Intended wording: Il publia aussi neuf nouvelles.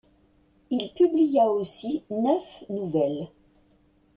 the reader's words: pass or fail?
pass